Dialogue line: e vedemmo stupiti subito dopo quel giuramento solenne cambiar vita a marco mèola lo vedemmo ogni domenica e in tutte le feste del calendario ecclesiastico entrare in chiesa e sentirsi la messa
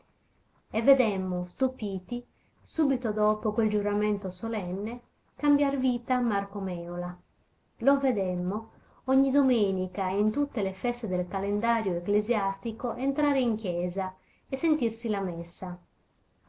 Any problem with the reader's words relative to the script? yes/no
no